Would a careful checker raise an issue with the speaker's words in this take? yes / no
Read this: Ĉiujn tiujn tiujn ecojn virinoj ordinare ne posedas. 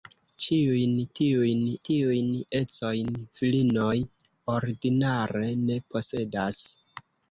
no